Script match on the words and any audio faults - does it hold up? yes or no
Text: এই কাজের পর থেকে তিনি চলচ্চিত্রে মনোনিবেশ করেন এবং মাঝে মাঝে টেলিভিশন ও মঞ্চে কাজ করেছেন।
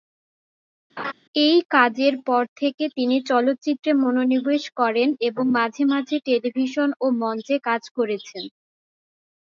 no